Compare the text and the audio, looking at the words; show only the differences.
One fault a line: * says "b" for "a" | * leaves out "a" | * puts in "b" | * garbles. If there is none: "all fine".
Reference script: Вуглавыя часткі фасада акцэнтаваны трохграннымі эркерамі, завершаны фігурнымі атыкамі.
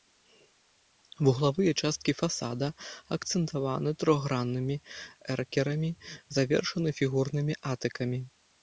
all fine